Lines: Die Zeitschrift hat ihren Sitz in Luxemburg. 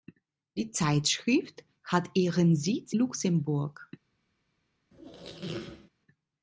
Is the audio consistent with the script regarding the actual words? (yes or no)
no